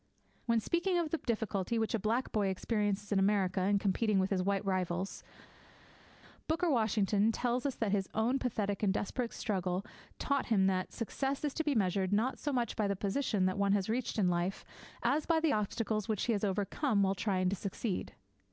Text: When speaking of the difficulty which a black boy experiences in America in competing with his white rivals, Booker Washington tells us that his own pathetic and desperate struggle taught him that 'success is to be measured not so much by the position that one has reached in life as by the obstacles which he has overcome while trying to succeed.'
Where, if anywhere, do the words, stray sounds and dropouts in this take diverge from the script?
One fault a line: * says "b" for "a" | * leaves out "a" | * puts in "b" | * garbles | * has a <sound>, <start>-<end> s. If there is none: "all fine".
all fine